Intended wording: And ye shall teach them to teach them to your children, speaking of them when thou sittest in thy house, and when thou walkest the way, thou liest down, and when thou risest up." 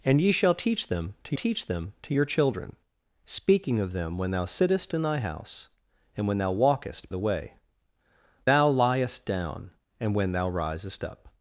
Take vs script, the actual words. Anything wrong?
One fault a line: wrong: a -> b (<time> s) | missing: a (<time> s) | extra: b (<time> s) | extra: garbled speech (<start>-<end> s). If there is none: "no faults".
no faults